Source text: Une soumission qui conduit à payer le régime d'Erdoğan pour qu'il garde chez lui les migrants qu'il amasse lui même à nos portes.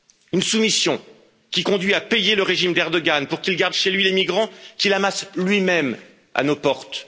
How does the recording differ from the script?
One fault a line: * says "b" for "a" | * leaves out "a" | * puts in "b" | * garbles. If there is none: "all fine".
all fine